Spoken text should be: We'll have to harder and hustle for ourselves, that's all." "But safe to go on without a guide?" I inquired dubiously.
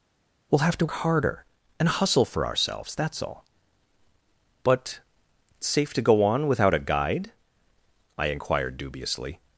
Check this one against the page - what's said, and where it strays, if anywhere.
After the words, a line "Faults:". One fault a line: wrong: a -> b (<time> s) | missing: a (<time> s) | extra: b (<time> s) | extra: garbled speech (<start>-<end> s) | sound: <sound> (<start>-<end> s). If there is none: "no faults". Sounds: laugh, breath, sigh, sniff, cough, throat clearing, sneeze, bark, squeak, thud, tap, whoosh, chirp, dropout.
We'll have to harder and hustle for ourselves, that's all." "But safe to go on without a guide?" I inquired dubiously.
Faults:
no faults